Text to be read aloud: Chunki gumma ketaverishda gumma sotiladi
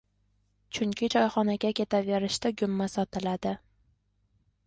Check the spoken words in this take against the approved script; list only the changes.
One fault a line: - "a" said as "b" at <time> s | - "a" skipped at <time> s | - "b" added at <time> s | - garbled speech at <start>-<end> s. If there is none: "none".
- "gumma" said as "choyxonaga" at 1.1 s